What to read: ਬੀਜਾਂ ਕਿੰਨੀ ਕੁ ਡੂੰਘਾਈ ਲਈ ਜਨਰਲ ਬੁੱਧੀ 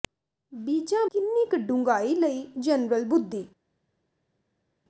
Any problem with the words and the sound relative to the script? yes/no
no